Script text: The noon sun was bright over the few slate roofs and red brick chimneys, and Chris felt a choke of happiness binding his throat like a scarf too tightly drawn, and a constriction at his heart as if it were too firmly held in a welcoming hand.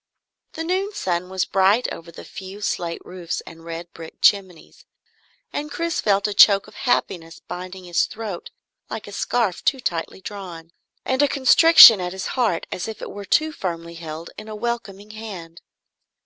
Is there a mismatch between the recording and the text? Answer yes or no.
no